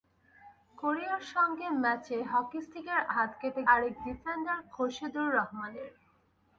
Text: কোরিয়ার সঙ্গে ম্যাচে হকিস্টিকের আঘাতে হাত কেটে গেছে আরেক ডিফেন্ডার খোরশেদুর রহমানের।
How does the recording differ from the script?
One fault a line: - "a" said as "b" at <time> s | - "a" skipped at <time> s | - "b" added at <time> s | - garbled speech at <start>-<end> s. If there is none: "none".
- "আঘাতে" skipped at 3.0 s
- "গেছে" skipped at 3.6 s